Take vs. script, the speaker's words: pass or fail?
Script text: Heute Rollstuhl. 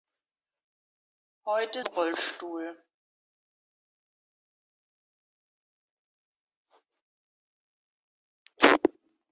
pass